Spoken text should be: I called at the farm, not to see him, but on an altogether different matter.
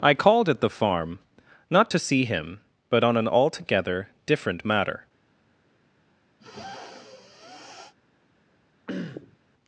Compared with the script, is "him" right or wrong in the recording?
right